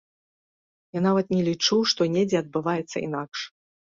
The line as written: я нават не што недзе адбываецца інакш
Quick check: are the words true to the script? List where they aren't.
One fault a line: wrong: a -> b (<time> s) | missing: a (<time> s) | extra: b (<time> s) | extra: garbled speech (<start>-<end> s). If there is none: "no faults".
extra: лічу (1.5 s)